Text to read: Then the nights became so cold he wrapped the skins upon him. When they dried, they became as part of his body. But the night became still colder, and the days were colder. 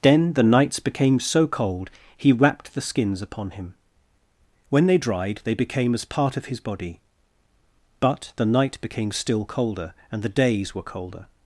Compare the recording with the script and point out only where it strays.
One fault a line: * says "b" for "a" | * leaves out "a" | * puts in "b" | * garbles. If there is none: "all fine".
all fine